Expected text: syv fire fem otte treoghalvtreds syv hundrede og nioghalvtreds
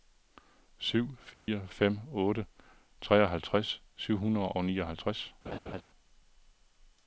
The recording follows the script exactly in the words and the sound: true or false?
false